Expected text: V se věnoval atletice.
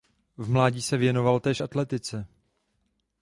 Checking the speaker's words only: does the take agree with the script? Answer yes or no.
no